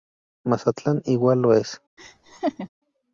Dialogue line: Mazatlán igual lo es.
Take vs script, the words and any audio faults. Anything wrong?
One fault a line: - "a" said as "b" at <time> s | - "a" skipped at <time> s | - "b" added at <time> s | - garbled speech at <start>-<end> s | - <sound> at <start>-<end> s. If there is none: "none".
- laugh at 2.0-2.7 s